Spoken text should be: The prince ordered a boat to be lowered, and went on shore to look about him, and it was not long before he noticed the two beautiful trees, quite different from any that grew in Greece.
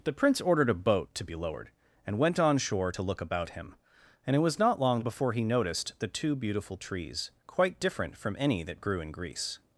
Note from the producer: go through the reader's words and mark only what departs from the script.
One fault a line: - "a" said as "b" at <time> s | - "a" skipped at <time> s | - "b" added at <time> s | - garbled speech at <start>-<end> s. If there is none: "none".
none